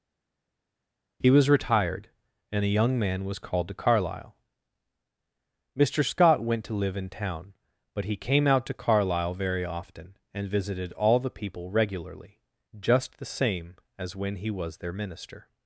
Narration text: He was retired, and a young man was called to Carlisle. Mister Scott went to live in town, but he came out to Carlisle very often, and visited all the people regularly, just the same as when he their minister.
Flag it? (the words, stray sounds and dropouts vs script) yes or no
yes